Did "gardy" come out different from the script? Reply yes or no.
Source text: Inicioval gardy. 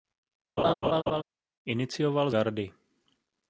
no